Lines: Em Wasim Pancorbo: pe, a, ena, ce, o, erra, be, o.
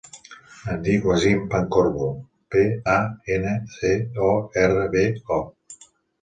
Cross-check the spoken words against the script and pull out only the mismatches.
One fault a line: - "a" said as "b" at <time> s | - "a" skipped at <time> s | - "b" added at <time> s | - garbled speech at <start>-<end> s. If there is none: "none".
- "dic" added at 0.8 s